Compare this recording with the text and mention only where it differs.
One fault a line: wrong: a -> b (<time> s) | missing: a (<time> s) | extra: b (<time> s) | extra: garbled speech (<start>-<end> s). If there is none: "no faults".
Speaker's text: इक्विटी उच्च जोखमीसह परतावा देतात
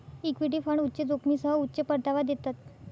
extra: फंड (0.6 s)
extra: उच्च (1.6 s)